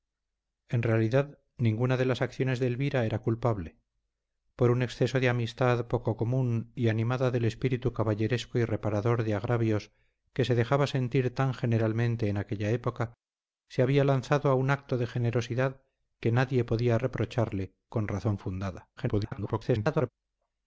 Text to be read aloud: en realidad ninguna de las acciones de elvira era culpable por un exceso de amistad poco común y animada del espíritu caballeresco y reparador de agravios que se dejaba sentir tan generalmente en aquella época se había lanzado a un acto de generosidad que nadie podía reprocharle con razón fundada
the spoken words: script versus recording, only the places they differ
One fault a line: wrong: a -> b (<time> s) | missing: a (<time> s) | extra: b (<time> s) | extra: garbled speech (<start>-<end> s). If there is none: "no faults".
extra: garbled speech (19.0-20.1 s)